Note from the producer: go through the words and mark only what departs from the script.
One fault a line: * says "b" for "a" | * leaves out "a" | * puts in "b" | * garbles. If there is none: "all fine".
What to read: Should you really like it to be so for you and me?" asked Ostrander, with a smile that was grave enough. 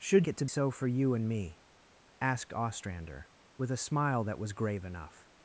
* leaves out "you really like"
* leaves out "be"